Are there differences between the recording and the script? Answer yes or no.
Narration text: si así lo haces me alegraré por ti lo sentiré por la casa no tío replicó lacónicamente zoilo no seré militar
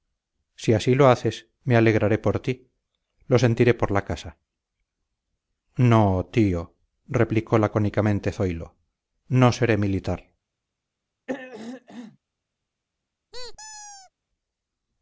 no